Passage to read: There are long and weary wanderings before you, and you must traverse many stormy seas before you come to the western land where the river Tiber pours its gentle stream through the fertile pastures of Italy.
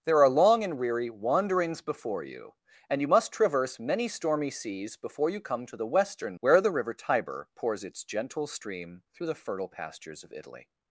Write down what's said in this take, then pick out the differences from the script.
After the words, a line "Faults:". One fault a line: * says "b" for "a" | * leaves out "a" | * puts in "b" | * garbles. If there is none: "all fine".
There are long and weary wanderings before you, and you must traverse many stormy seas before you come to the western where the river Tiber pours its gentle stream through the fertile pastures of Italy.
Faults:
* leaves out "land"